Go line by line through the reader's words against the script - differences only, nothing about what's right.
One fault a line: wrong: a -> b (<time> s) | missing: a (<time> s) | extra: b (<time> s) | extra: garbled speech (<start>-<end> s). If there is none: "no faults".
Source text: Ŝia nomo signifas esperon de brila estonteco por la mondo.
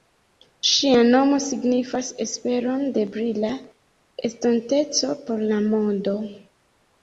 no faults